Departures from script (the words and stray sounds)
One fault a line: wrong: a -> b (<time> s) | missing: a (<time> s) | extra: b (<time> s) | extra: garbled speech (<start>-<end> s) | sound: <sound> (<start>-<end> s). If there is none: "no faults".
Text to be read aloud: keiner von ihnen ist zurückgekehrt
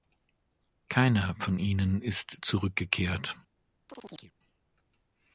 sound: chirp (3.9-4.3 s)